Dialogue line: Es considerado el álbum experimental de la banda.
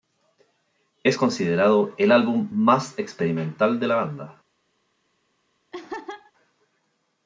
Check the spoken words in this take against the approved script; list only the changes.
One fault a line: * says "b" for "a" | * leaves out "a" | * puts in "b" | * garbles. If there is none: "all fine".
* puts in "más"